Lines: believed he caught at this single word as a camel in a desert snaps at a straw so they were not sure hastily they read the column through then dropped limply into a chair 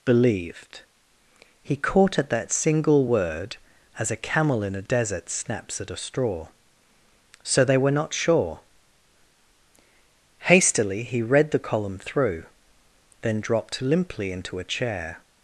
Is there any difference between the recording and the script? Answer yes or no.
yes